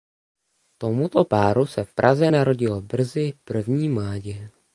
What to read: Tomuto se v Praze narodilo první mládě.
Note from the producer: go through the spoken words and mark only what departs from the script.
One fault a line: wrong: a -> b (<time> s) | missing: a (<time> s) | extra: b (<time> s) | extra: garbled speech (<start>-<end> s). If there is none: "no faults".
extra: páru (1.2 s)
extra: brzy (2.8 s)